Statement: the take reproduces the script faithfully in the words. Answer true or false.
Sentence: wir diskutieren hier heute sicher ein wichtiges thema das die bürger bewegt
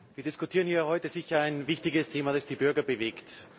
true